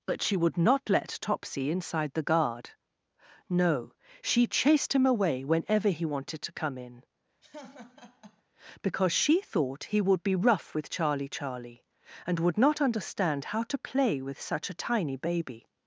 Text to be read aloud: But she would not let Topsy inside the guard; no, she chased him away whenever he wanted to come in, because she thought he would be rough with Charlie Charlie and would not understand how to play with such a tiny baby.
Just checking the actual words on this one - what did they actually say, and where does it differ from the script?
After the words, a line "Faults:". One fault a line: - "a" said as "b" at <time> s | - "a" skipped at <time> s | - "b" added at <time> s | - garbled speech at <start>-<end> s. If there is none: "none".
But she would not let Topsy inside the guard; no, she chased him away whenever he wanted to come in, because she thought he would be rough with Charlie Charlie and would not understand how to play with such a tiny baby.
Faults:
none